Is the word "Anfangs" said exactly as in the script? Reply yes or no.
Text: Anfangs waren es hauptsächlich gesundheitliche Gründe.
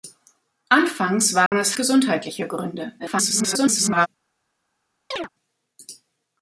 yes